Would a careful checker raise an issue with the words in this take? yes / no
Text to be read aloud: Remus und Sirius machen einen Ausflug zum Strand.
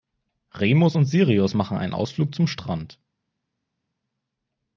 no